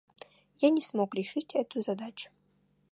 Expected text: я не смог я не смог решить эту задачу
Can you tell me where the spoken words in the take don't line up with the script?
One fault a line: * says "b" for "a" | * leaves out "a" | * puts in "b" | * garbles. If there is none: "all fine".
* leaves out "я не смог"